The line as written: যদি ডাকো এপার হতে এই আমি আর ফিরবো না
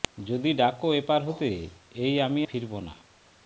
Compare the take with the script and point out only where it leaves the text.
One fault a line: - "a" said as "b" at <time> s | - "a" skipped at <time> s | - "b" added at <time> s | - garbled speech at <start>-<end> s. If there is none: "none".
- "আর" skipped at 2.4 s